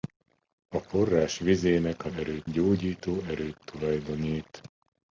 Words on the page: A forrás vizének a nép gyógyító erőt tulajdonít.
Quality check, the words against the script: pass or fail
fail